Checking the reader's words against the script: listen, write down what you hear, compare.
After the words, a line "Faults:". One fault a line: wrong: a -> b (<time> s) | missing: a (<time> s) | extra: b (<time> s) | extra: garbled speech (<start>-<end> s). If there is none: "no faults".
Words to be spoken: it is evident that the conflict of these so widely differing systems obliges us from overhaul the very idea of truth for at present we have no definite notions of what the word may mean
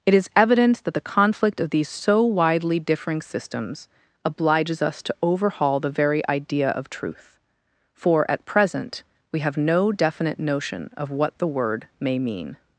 it is evident that the conflict of these so widely differing systems obliges us to overhaul the very idea of truth for at present we have no definite notion of what the word may mean
Faults:
wrong: from -> to (5.0 s)
wrong: notions -> notion (10.4 s)